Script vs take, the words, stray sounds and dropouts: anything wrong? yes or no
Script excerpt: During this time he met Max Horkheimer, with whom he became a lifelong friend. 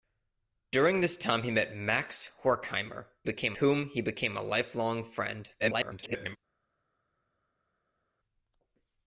yes